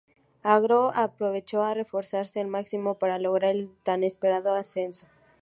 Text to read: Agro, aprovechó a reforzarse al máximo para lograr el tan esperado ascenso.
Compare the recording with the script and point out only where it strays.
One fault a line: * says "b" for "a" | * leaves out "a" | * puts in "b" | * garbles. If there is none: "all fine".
all fine